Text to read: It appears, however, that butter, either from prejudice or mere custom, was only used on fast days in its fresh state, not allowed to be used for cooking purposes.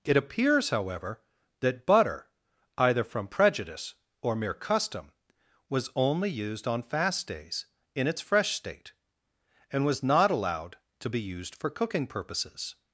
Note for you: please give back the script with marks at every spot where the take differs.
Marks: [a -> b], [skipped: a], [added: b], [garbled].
It appears, however, that butter, either from prejudice or mere custom, was only used on fast days in its fresh state, [added: and was] not allowed to be used for cooking purposes.